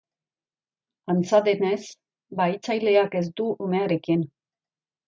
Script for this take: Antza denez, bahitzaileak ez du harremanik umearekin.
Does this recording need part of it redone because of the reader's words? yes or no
yes